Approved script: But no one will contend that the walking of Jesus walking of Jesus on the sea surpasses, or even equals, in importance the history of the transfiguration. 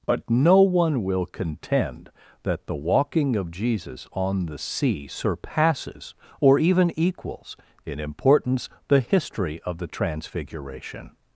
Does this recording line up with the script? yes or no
no